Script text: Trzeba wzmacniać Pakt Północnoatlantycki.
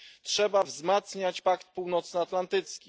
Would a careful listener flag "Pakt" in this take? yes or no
no